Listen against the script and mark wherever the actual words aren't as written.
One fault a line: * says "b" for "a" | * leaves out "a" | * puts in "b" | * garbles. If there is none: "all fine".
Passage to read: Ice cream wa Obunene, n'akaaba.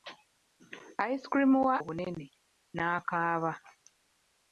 all fine